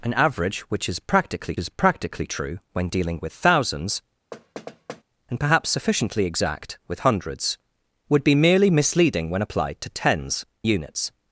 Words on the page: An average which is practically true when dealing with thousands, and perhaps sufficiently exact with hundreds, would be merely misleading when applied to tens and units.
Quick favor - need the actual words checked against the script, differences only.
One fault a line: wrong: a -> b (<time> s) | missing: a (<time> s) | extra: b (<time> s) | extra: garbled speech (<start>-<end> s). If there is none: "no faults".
extra: is practically (1.6 s)
missing: and (10.4 s)